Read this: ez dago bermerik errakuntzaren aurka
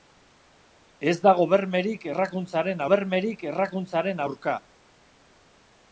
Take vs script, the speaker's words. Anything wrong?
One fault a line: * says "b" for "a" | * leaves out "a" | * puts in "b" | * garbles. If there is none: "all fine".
* puts in "bermerik errakuntzaren"